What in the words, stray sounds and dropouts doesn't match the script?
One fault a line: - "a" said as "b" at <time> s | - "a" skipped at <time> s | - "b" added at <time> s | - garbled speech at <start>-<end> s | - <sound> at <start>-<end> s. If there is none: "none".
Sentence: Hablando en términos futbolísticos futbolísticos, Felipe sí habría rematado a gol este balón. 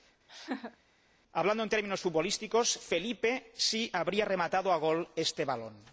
- laugh at 0.3-0.8 s
- "futbolísticos" skipped at 2.8 s